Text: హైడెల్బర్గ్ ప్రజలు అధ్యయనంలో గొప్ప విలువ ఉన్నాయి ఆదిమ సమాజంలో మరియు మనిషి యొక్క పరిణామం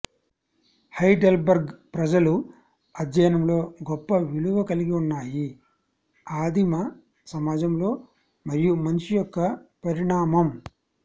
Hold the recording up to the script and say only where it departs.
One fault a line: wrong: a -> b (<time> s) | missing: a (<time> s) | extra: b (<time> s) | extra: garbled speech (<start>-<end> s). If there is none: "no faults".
extra: కలిగి (4.6 s)